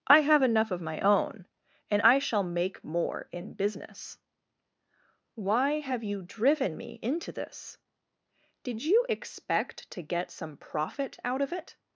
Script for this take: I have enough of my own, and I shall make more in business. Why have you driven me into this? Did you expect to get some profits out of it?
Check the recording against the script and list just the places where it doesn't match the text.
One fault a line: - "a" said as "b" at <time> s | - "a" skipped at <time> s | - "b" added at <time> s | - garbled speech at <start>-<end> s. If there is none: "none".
- "profits" said as "profit" at 10.6 s